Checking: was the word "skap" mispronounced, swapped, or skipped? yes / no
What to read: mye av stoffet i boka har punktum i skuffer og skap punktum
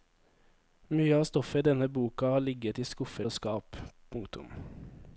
no